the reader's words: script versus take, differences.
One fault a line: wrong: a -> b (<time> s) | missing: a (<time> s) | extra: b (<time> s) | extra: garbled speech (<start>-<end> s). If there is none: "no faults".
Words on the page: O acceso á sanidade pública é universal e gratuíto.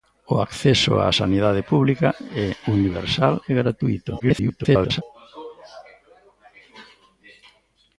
extra: garbled speech (4.2-5.0 s)